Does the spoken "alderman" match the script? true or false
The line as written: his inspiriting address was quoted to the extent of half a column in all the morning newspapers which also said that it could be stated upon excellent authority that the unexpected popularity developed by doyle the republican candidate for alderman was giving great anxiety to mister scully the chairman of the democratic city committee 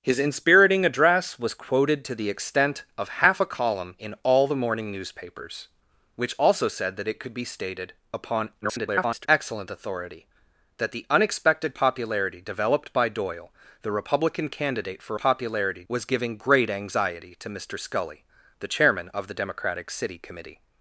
false